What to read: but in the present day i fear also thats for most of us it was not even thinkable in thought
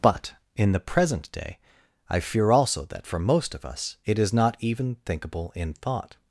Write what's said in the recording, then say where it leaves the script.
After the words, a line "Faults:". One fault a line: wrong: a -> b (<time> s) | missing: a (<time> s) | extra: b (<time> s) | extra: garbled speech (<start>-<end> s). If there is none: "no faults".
but in the present day i fear also that for most of us it is not even thinkable in thought
Faults:
wrong: thats -> that (2.9 s)
wrong: was -> is (4.2 s)